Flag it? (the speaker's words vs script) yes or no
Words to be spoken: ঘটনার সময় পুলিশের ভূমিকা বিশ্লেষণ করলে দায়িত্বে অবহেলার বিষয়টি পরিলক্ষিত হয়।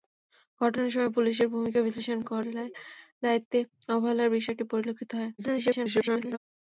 yes